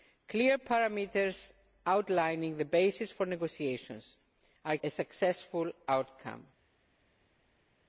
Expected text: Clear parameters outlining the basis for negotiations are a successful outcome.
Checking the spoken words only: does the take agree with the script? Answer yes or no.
yes